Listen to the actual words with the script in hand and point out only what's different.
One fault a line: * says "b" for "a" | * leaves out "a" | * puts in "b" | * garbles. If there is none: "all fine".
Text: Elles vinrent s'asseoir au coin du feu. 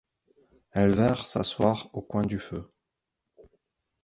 all fine